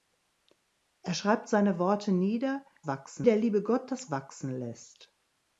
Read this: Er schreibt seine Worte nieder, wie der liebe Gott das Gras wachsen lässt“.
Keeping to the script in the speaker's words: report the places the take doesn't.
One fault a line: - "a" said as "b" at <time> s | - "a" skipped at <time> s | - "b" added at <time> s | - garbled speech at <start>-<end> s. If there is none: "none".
- "wie" said as "wachsen" at 2.8 s
- "Gras" skipped at 4.1 s